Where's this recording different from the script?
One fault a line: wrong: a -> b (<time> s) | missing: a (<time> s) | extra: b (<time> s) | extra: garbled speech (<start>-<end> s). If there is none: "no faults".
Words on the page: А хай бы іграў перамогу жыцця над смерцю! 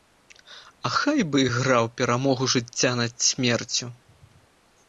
no faults